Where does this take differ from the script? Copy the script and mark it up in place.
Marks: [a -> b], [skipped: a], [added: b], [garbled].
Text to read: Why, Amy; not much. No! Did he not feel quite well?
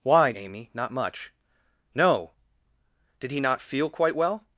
Why, Amy; not much. No! Did he not feel quite well?